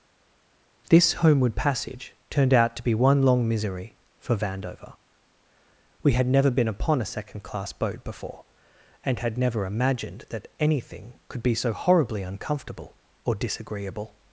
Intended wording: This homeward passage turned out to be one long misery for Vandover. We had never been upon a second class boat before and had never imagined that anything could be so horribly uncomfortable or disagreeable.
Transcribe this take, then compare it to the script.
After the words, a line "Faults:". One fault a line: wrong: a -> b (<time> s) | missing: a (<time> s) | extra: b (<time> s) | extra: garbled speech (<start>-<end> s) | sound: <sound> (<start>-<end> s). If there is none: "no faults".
This homeward passage turned out to be one long misery for Vandover. We had never been upon a second class boat before and had never imagined that anything could be so horribly uncomfortable or disagreeable.
Faults:
no faults